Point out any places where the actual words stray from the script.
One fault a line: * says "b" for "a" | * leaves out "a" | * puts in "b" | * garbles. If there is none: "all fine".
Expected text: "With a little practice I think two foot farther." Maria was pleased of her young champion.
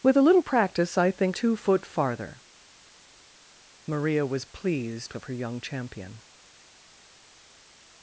all fine